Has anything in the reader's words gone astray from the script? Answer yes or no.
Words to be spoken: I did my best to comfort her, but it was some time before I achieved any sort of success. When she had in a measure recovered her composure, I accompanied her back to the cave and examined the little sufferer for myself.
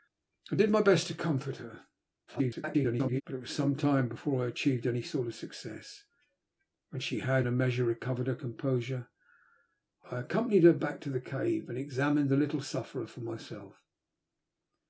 yes